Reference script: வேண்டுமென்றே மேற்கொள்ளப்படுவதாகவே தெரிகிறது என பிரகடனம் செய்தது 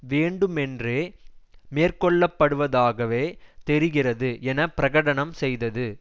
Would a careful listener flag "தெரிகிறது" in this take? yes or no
no